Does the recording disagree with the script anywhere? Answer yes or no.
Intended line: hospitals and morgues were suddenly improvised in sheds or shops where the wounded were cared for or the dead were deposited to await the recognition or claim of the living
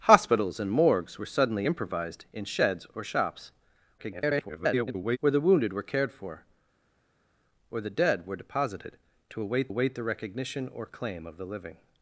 yes